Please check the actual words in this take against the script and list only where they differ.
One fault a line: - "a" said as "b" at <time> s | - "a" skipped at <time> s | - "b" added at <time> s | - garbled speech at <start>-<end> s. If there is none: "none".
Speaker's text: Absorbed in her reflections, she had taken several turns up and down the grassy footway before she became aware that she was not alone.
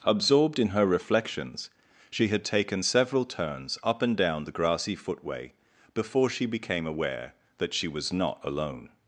none